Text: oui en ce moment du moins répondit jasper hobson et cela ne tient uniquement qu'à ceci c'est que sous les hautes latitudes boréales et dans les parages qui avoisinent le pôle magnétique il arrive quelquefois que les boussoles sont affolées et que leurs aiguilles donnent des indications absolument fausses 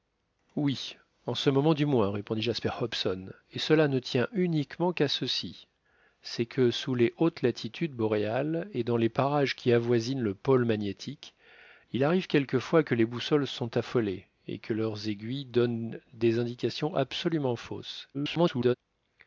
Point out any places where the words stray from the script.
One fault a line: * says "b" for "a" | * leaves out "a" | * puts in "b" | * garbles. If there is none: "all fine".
* garbles